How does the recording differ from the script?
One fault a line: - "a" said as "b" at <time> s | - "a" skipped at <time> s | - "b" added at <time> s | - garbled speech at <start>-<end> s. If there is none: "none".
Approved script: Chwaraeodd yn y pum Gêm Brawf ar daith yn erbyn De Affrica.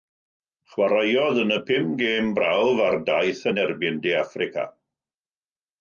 none